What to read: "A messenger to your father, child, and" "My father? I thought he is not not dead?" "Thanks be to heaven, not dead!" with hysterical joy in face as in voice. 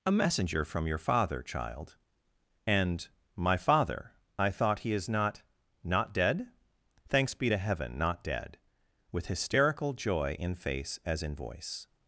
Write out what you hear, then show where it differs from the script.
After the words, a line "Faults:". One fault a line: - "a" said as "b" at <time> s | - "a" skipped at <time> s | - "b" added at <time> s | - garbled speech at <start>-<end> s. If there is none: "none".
"A messenger from your father, child, and" "My father? I thought he is not not dead?" "Thanks be to heaven, not dead!" with hysterical joy in face as in voice.
Faults:
- "to" said as "from" at 0.7 s